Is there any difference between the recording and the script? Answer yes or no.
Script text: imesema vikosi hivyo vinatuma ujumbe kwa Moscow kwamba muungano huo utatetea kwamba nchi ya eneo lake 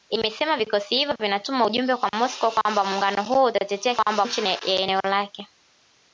no